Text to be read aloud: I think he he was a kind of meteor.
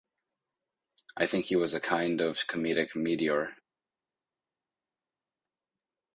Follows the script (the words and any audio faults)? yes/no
no